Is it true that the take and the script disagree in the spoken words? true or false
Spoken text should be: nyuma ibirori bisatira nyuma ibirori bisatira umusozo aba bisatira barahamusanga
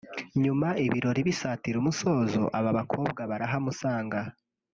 true